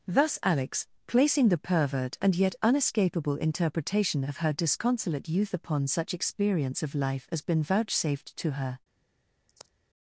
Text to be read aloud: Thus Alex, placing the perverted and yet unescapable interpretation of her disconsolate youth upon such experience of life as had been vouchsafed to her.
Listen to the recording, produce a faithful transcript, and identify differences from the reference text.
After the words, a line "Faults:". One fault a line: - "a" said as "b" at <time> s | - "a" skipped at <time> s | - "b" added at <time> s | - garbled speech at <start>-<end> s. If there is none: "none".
Thus Alex, placing the pervert and yet unescapable interpretation of her disconsolate youth upon such experience of life as been vouchsafed to her.
Faults:
- "perverted" said as "pervert" at 1.6 s
- "had" skipped at 7.4 s